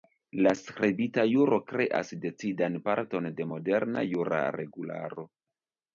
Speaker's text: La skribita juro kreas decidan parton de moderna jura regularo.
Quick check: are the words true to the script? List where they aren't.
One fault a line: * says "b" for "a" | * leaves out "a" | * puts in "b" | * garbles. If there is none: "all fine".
all fine